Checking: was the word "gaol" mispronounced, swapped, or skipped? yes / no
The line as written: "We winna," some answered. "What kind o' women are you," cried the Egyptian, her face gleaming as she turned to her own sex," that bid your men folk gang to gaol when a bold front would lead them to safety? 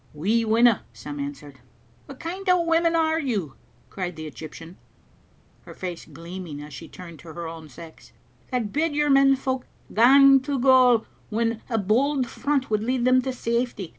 no